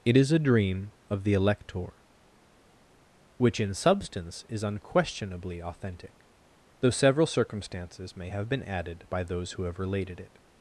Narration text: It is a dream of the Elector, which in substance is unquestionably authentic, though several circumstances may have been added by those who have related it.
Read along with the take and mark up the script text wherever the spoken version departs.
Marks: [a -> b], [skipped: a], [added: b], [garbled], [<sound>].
It is a dream of the Elector, which in substance is unquestionably authentic, though several circumstances may have been added by those who have related it.